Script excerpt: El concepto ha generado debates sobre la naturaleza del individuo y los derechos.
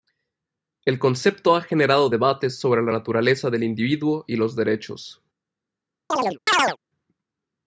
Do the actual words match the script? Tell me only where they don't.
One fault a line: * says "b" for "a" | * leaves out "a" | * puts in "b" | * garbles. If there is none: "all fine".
all fine